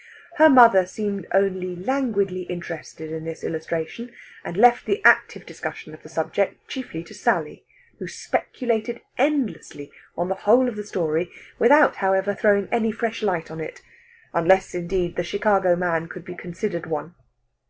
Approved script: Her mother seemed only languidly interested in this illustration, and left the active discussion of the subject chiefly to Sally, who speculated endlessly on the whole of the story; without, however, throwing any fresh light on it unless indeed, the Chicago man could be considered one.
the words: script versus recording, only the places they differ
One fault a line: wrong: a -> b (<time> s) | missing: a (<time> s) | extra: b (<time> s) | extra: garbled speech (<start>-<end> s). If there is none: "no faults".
no faults